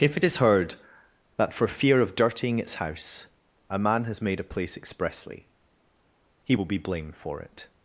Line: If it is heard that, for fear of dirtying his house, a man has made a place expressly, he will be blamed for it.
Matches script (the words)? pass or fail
fail